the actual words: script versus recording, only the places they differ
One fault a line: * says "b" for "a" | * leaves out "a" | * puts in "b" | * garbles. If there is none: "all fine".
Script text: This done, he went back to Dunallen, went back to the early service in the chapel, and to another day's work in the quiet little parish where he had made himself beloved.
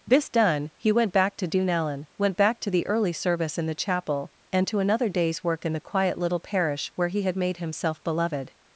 all fine